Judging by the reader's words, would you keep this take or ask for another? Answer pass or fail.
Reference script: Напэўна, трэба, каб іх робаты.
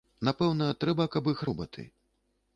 pass